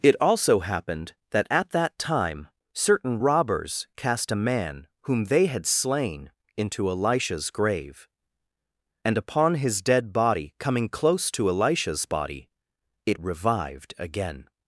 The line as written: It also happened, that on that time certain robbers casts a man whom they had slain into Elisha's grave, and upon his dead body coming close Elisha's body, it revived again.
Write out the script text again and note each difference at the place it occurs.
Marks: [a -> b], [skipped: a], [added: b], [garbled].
It also happened, that [on -> at] that time certain robbers [casts -> cast] a man whom they had slain into Elisha's grave, and upon his dead body coming close [added: to] Elisha's body, it revived again.